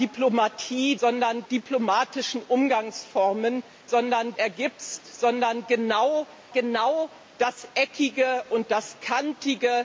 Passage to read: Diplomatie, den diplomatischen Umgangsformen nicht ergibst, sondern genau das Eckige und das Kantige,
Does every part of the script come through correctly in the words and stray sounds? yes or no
no